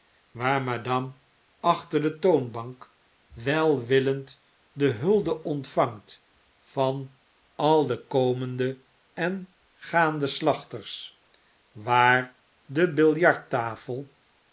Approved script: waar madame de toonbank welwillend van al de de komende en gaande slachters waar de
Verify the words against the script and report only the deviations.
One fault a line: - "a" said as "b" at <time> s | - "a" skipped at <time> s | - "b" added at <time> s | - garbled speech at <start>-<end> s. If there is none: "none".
- "achter" added at 1.6 s
- "de hulde ontvangt" added at 4.7 s
- "de" skipped at 8.1 s